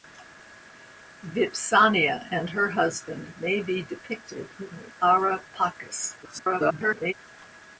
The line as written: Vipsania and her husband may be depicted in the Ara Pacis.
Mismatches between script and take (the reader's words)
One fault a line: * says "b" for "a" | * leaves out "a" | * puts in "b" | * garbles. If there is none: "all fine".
* garbles